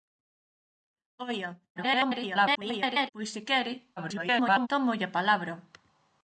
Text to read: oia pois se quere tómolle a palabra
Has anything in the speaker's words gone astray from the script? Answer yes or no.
yes